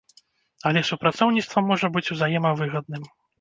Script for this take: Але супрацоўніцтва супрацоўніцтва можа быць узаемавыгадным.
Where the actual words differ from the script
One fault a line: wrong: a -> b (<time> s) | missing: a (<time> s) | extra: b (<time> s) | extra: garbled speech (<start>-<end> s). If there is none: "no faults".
missing: супрацоўніцтва (1.6 s)